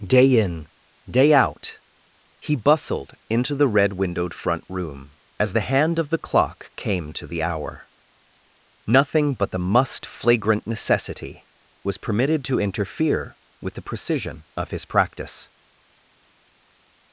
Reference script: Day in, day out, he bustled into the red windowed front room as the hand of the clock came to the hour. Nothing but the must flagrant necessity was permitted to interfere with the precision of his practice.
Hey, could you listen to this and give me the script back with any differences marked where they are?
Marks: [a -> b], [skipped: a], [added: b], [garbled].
Day in, day out, he bustled into the red windowed front room as the hand of the clock came to the hour. Nothing but the must flagrant necessity was permitted to interfere with the precision of his practice.